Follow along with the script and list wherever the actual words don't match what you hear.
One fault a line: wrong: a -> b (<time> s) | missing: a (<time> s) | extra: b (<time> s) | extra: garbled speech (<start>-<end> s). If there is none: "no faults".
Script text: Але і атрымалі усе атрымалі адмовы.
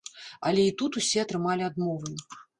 wrong: атрымалі -> тут (0.8 s)